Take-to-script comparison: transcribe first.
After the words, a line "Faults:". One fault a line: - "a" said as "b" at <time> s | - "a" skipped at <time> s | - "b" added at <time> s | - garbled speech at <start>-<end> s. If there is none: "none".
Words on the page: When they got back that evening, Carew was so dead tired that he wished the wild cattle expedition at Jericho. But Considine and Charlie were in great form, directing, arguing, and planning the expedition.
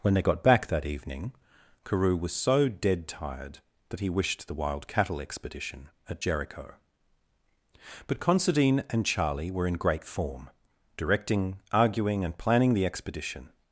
When they got back that evening, Carew was so dead tired that he wished the wild cattle expedition at Jericho. But Considine and Charlie were in great form, directing, arguing, and planning the expedition.
Faults:
none